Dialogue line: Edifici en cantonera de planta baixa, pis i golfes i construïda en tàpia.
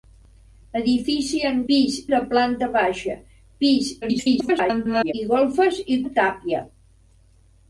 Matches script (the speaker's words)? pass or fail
fail